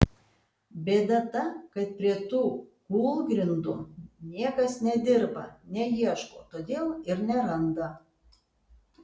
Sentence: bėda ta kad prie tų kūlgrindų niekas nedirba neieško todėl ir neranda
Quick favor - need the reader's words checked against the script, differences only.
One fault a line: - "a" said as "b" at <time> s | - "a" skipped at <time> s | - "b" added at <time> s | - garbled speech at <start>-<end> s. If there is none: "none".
none